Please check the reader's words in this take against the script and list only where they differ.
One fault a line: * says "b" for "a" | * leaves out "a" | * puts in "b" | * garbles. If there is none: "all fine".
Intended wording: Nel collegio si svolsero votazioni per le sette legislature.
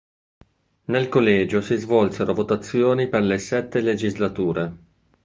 all fine